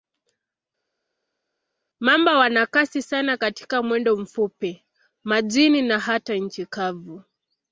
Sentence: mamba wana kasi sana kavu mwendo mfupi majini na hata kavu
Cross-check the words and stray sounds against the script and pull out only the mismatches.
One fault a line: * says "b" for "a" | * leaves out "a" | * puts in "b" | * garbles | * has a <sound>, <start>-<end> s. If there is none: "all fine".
* says "katika" for "kavu"
* puts in "nchi"